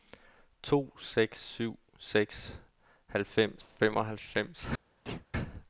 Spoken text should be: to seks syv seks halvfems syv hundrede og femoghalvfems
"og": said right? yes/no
no